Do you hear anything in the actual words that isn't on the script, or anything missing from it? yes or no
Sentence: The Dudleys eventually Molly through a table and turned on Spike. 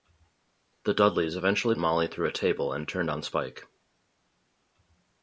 no